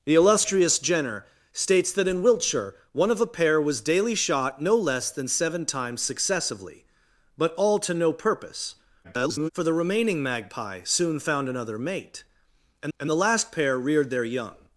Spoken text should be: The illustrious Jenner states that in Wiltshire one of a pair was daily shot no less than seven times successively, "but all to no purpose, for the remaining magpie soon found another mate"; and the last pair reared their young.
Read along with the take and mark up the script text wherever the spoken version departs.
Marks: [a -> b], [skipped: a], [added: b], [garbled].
The illustrious Jenner states that in Wiltshire one of a pair was daily shot no less than seven times successively, "but all to no purpose, [garbled] for the remaining magpie soon found another mate"; and [added: and] the last pair reared their young.